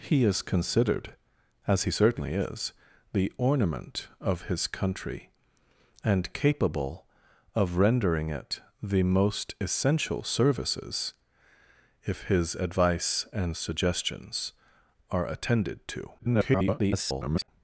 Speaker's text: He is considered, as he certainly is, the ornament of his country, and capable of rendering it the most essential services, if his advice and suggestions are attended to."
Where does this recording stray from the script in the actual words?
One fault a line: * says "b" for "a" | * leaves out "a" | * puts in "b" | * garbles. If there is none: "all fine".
* garbles